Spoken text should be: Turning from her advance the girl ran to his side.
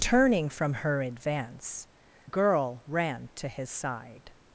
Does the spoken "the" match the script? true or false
false